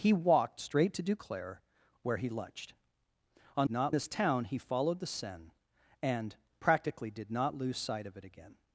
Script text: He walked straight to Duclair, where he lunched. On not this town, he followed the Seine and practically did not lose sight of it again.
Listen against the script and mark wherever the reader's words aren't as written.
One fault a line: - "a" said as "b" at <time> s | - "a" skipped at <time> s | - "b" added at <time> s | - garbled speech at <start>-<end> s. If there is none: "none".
none